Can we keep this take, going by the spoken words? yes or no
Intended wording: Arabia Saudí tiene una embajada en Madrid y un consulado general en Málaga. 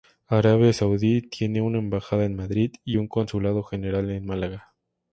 yes